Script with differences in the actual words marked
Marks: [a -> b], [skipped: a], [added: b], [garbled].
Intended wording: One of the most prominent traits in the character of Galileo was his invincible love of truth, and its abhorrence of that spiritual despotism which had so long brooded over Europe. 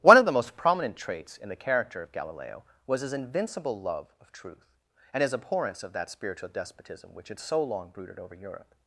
One of the most prominent traits in the character of Galileo was his invincible love of truth, and [its -> his] abhorrence of that spiritual despotism which had so long brooded over Europe.